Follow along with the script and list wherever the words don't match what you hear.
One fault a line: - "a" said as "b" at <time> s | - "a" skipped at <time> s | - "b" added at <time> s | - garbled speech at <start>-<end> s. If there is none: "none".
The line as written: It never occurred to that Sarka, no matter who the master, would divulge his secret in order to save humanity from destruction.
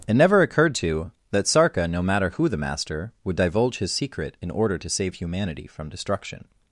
none